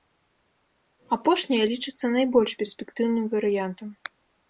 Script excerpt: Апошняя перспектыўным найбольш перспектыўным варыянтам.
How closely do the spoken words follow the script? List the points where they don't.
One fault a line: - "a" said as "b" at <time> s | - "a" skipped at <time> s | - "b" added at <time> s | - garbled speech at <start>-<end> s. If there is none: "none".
- "перспектыўным" said as "лічыцца" at 1.7 s